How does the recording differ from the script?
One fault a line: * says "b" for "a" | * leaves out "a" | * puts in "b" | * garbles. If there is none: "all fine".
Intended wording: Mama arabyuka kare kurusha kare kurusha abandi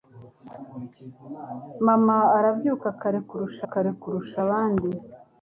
all fine